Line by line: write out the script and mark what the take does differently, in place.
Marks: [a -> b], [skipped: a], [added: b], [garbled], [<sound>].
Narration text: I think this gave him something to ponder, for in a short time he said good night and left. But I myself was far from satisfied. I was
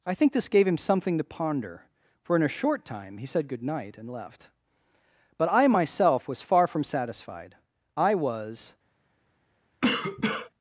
I think this gave him something to ponder, for in a short time he said good night and left. But I myself was far from satisfied. I was [cough]